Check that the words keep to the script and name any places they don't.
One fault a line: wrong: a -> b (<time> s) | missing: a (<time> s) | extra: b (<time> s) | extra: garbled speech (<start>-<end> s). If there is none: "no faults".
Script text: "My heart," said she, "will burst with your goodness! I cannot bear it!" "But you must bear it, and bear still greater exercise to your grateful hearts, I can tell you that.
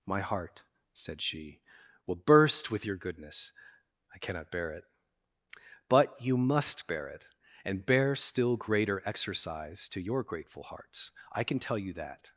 no faults